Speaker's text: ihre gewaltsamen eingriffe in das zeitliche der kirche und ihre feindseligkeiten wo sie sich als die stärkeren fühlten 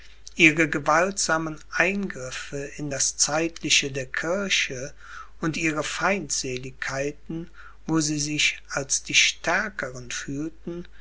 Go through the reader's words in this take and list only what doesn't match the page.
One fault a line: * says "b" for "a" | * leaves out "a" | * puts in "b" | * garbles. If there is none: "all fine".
all fine